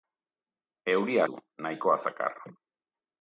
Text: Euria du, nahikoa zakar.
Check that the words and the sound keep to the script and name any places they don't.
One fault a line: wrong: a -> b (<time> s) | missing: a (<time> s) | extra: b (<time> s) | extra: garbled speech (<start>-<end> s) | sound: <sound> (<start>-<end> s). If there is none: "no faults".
no faults